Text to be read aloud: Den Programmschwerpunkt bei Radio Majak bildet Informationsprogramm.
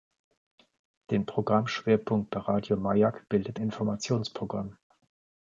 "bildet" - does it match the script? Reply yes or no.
yes